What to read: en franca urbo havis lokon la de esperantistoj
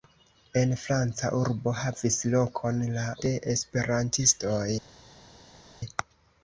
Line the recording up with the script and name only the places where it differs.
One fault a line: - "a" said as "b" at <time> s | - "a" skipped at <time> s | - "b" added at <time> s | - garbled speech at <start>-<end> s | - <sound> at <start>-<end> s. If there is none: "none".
none